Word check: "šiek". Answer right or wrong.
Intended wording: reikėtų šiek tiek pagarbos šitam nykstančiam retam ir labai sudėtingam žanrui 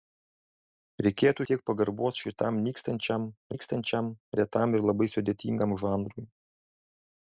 wrong